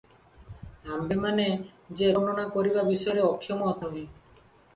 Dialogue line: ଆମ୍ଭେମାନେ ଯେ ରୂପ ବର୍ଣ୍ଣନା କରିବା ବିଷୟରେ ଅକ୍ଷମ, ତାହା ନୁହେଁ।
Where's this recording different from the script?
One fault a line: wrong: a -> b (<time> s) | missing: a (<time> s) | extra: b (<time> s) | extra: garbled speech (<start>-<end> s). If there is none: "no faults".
missing: ରୂପ (2.1 s)
missing: ତାହା (3.7 s)